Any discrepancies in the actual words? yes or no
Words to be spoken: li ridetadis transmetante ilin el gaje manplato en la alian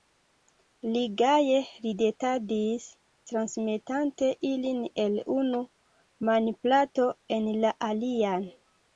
yes